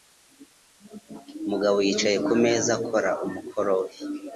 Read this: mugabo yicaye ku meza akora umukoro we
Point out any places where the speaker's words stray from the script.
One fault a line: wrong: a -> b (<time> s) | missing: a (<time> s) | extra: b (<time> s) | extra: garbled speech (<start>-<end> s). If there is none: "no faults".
no faults